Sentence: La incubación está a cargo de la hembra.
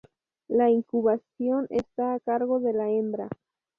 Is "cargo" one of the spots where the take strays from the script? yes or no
no